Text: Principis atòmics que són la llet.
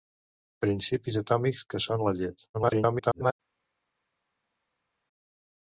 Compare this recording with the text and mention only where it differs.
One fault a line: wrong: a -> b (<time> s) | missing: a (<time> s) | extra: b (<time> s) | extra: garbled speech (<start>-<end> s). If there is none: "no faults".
extra: garbled speech (2.5-3.3 s)